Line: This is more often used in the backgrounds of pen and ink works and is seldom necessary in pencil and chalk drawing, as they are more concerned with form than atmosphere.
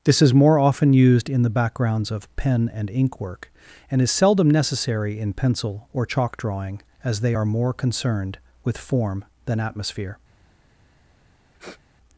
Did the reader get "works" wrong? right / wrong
wrong